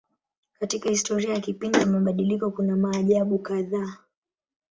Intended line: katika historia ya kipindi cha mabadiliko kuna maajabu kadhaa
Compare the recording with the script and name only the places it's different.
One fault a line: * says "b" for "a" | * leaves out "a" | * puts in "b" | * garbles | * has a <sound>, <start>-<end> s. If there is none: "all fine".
* leaves out "cha"